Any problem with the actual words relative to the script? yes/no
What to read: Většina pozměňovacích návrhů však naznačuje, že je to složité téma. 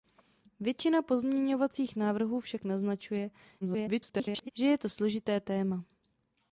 yes